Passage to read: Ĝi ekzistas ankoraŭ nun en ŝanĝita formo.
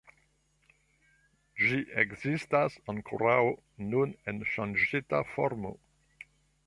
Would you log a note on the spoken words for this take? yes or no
no